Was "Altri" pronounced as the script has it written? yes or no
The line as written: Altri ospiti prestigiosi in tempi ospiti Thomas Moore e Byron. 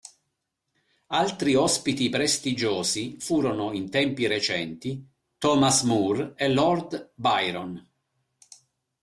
yes